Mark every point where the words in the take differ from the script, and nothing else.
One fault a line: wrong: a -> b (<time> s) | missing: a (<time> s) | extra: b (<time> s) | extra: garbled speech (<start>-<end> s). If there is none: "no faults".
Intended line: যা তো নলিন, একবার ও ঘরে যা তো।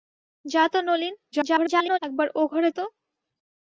extra: garbled speech (1.3-2.0 s)
missing: যা (2.7 s)